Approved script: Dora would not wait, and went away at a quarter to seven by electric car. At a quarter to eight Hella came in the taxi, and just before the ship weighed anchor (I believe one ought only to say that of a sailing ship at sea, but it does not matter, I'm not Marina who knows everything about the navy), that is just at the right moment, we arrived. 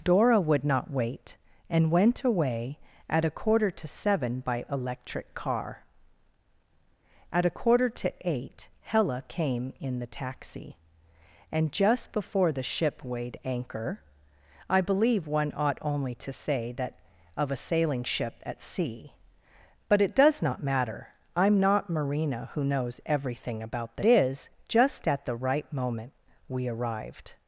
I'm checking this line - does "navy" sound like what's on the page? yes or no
no